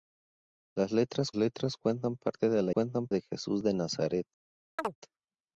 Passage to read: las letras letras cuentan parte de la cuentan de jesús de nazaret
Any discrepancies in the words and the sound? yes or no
yes